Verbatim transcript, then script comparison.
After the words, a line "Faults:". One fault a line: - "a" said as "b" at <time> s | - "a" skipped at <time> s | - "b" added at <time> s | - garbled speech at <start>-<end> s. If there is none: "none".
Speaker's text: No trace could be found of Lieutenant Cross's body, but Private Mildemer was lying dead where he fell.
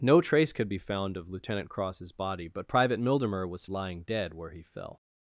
No trace could be found of Lieutenant Cross's body, but Private Mildemer was lying dead where he fell.
Faults:
none